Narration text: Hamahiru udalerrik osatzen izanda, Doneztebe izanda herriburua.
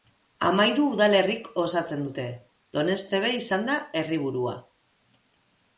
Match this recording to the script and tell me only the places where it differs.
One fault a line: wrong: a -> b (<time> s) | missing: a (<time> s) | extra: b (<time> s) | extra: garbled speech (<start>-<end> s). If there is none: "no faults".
wrong: izanda -> dute (2.1 s)